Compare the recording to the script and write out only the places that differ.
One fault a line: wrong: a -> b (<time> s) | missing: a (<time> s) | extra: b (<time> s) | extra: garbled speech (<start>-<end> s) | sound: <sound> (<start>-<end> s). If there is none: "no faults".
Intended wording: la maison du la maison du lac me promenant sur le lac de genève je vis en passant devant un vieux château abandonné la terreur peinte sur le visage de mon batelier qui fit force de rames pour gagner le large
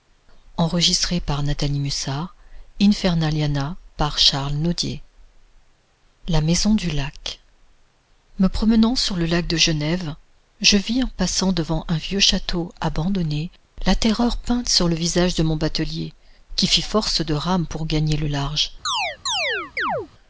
missing: la maison du (6.9 s)
sound: chirp (18.8-20.1 s)